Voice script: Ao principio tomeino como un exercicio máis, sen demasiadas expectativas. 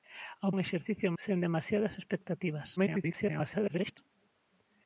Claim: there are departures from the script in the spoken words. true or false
true